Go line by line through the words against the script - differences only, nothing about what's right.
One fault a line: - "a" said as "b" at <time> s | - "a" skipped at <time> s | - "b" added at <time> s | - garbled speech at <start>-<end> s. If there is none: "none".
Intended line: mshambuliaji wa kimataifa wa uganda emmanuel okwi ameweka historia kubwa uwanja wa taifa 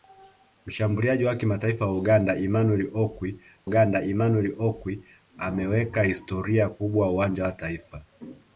- "uganda emmanuel okwi" added at 3.6 s